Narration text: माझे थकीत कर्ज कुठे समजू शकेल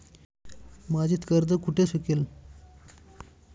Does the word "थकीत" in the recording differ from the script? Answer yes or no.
yes